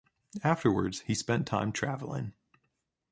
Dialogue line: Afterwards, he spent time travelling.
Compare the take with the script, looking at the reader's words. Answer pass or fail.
pass